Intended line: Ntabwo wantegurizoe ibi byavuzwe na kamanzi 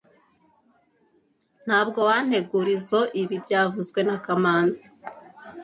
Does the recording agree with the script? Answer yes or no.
yes